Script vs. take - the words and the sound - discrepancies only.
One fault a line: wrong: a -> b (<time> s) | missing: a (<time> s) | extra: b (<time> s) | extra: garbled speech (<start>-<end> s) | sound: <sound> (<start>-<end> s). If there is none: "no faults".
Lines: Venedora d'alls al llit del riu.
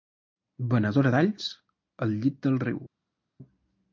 no faults